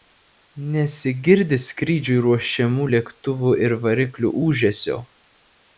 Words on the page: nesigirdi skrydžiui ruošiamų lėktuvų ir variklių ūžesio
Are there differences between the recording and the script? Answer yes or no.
no